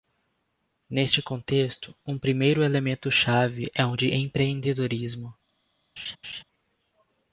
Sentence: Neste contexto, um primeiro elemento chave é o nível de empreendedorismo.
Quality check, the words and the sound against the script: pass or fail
fail